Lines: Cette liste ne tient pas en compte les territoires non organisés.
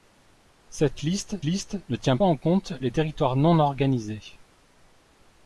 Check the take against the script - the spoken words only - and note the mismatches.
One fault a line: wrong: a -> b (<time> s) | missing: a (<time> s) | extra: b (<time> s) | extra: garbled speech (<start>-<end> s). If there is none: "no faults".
extra: liste (1.4 s)
missing: pas (2.2 s)